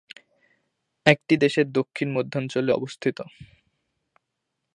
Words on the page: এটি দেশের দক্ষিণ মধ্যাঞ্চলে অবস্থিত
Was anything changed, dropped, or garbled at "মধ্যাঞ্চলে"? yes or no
no